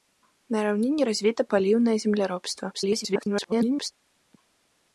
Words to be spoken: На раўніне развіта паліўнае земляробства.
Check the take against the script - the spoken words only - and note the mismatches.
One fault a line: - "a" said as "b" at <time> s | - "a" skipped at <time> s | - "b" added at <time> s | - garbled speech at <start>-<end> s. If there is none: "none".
- garbled speech at 2.7-3.9 s